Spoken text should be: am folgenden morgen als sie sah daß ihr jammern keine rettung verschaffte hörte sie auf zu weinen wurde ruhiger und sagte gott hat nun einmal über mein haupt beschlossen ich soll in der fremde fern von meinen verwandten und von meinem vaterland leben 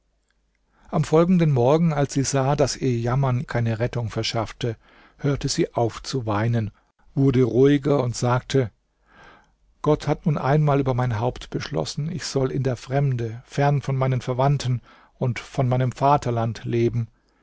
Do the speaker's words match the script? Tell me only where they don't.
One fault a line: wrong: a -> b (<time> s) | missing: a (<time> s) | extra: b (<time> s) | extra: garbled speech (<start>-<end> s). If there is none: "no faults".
no faults